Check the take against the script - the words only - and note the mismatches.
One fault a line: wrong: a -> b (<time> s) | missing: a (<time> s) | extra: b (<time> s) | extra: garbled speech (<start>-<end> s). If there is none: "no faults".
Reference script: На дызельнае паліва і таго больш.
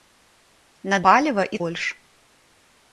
missing: дызельнае (1.0 s)
missing: таго (1.6 s)